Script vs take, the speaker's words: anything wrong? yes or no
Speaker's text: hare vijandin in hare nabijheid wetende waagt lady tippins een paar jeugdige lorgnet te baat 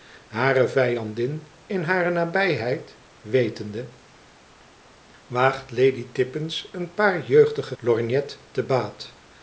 no